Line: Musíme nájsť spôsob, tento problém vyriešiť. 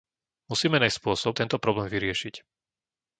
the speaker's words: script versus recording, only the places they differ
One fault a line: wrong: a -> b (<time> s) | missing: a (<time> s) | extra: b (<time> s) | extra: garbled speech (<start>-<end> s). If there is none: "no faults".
no faults